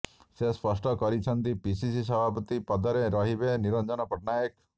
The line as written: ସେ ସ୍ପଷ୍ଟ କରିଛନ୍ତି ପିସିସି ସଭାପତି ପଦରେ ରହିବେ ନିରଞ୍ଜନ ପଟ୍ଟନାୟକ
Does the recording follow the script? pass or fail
pass